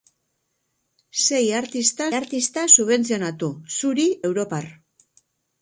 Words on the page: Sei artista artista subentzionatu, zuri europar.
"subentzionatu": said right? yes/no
yes